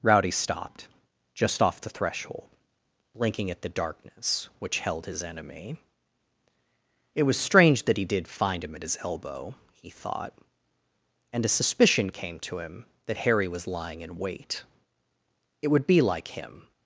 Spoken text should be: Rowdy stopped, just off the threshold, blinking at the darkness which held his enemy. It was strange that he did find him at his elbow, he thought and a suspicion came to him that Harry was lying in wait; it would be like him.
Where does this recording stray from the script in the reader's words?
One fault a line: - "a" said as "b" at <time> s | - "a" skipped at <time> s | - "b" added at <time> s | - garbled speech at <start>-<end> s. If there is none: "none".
none